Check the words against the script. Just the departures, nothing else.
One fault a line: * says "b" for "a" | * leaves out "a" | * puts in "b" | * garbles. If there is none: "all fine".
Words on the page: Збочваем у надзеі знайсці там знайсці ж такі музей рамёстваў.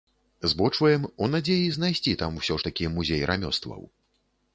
* says "усё" for "знайсці"